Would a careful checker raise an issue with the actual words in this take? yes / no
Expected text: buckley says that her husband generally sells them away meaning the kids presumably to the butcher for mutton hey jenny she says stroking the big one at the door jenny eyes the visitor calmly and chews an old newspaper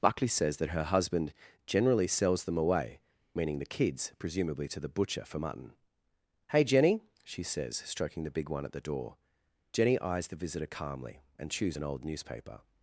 no